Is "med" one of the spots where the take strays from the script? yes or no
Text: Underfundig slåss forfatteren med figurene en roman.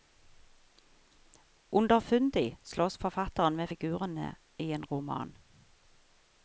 no